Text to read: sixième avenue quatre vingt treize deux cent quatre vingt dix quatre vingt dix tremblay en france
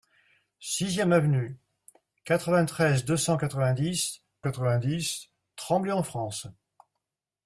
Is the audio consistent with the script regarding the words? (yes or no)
yes